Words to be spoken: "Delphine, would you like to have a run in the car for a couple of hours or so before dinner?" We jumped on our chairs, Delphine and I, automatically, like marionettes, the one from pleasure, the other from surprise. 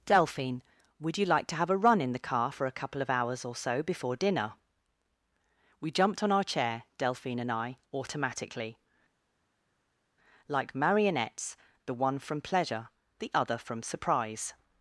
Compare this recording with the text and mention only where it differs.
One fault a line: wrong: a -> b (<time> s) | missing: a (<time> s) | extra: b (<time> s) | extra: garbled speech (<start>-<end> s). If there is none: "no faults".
wrong: chairs -> chair (6.4 s)